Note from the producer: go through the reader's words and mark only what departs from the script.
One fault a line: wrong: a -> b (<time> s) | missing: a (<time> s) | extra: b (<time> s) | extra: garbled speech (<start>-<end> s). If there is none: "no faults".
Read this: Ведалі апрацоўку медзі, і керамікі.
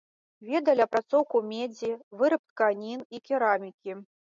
extra: выраб тканін (2.2 s)